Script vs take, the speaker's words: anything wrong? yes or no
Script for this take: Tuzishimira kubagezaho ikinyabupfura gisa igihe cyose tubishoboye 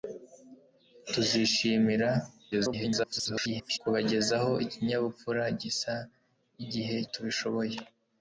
yes